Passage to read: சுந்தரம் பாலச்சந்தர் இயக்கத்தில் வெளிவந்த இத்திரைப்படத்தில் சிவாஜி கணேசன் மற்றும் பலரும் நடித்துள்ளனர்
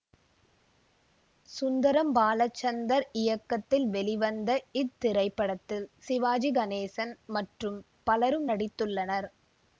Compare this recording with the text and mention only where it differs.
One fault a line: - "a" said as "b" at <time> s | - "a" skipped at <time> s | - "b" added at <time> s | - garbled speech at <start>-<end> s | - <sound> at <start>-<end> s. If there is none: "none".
none